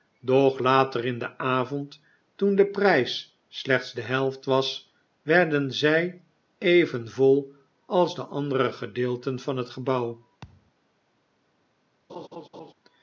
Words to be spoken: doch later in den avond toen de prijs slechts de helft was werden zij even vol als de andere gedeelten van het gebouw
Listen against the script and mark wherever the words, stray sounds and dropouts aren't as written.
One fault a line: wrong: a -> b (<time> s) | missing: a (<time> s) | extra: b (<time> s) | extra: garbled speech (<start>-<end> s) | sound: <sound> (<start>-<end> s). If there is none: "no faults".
sound: thud (10.4-10.7 s)
sound: laugh (12.1-12.7 s)